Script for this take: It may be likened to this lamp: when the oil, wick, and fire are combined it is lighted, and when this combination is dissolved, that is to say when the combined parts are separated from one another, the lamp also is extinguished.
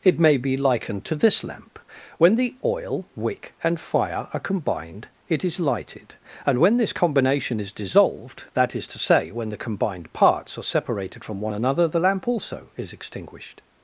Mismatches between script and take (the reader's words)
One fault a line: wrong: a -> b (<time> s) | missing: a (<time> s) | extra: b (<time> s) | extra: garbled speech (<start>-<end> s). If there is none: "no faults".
no faults